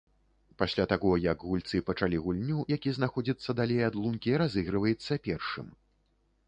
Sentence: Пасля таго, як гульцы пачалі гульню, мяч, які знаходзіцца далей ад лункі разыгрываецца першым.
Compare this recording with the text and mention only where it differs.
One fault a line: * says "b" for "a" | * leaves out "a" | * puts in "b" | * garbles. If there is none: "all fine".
* leaves out "мяч"